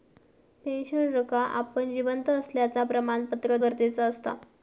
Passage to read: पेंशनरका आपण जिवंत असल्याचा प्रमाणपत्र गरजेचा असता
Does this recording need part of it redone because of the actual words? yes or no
no